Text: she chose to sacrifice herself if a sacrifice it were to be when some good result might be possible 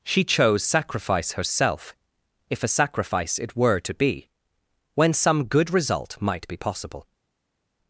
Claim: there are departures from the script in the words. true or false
true